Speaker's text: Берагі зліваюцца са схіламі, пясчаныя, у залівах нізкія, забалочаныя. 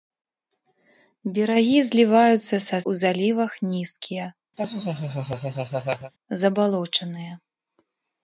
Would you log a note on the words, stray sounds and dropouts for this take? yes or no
yes